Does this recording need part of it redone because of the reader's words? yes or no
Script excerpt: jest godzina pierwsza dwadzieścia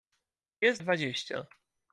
yes